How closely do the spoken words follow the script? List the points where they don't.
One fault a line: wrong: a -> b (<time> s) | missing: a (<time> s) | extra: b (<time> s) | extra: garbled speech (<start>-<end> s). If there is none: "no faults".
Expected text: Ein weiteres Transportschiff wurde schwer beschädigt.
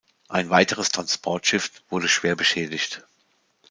no faults